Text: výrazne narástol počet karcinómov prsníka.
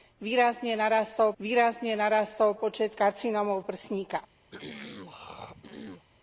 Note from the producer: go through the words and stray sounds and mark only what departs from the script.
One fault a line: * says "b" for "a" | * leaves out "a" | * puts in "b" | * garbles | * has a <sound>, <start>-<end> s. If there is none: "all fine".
* puts in "výrazne narástol"
* has a throat clearing, 4.5-6.1 s